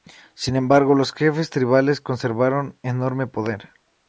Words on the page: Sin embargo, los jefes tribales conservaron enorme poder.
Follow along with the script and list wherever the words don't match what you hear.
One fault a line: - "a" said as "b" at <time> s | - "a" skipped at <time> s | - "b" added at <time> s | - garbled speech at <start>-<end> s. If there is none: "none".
none